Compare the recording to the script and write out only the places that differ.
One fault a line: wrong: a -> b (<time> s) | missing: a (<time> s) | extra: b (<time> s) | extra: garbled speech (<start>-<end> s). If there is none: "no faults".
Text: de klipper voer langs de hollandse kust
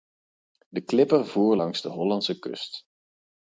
no faults